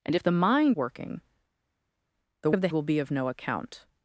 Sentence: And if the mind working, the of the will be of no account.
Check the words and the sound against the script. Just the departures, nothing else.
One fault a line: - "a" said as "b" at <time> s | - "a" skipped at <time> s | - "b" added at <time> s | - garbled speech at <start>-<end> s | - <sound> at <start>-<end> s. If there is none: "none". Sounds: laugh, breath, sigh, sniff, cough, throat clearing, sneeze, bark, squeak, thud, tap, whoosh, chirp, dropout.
none